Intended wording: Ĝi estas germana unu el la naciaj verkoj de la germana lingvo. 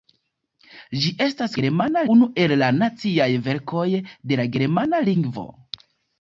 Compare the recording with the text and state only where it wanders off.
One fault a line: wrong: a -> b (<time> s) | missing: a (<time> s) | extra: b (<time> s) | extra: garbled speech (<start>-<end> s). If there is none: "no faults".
no faults